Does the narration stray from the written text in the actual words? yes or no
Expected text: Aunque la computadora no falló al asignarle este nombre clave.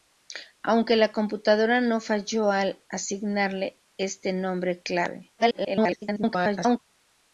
yes